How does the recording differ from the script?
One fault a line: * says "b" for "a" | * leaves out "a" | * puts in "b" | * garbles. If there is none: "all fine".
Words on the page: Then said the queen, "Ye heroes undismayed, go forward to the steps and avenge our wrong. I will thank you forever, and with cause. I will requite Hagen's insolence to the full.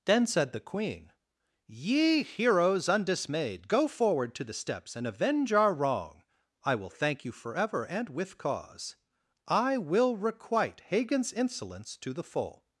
all fine